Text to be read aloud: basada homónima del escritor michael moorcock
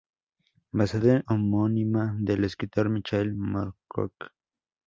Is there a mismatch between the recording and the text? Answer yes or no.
no